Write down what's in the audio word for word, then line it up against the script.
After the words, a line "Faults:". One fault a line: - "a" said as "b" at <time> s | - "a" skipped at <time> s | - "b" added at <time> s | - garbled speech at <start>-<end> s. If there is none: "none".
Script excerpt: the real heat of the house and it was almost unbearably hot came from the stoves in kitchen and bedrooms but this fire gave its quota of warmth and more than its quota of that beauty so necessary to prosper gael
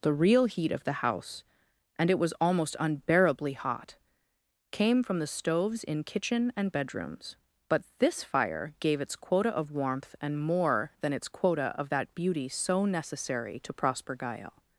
the real heat of the house and it was almost unbearably hot came from the stoves in kitchen and bedrooms but this fire gave its quota of warmth and more than its quota of that beauty so necessary to prosper gael
Faults:
none